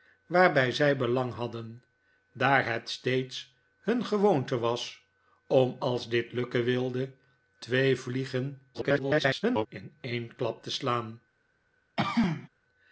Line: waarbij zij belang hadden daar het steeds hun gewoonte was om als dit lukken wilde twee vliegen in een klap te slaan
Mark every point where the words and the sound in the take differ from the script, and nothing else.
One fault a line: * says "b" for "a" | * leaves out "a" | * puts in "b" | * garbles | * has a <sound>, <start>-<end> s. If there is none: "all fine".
* garbles
* has a throat clearing, 12.0-12.5 s